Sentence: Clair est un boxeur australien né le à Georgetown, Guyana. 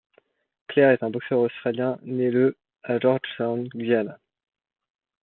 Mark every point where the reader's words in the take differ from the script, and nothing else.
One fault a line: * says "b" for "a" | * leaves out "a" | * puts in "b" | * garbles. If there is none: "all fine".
all fine